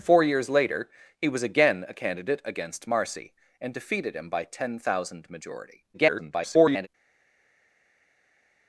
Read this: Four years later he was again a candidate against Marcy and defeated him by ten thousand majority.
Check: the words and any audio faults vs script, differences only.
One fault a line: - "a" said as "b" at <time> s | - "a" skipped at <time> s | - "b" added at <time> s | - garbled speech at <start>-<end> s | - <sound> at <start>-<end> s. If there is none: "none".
- garbled speech at 5.9-6.9 s